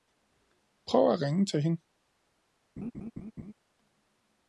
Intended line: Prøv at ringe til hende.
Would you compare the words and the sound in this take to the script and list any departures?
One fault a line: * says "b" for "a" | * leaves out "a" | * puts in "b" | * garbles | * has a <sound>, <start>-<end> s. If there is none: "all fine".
* has a laugh, 2.8-3.5 s